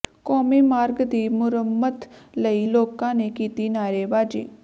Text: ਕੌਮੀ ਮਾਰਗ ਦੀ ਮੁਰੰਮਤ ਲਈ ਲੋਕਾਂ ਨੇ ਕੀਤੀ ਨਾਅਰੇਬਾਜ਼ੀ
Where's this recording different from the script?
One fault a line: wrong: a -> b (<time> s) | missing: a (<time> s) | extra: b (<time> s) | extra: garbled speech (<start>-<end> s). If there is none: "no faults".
no faults